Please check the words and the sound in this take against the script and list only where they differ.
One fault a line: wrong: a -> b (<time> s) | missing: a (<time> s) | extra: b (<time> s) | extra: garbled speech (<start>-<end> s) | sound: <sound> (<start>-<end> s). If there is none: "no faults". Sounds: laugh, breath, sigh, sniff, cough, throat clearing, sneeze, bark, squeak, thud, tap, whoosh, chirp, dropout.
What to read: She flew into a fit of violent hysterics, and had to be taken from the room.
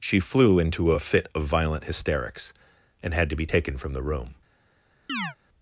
sound: chirp (5.1-5.4 s)